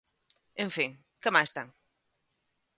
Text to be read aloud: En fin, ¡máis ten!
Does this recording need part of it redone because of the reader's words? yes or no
yes